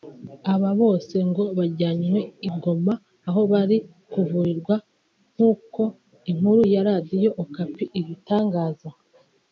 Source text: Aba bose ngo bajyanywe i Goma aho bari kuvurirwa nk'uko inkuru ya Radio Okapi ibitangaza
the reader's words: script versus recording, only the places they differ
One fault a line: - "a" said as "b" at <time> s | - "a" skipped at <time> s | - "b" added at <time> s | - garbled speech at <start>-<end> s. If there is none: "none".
none